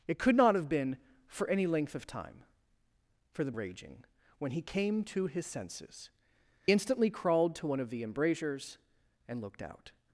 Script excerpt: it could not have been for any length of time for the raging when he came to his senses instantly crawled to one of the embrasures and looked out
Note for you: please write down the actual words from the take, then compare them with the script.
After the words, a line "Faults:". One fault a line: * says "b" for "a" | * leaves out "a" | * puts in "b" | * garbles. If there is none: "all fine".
it could not have been for any length of time for the raging when he came to his senses instantly crawled to one of the embrasures and looked out
Faults:
all fine